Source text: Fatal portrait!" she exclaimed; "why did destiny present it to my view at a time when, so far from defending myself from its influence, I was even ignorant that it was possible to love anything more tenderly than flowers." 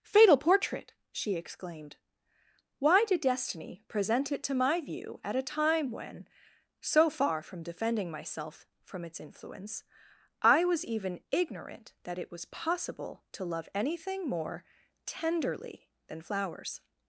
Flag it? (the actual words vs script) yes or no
no